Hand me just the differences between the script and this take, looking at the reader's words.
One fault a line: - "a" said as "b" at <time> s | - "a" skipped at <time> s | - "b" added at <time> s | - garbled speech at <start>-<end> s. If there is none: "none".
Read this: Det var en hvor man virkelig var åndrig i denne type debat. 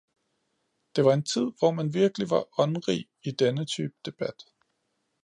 - "tid" added at 1.2 s